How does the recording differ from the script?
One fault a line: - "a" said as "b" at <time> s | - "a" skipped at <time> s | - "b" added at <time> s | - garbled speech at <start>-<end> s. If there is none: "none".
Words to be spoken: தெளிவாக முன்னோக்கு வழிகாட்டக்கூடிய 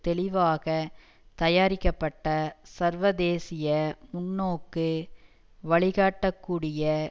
- "தயாரிக்கப்பட்ட சர்வதேசிய" added at 1.4 s